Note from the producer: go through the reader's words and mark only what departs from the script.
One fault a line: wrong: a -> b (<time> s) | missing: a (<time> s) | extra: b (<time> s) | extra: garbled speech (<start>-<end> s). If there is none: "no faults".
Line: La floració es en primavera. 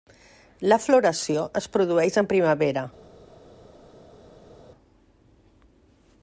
extra: produeix (1.8 s)